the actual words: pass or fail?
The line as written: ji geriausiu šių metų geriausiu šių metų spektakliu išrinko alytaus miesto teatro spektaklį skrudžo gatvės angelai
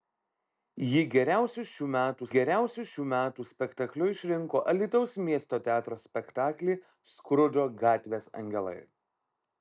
pass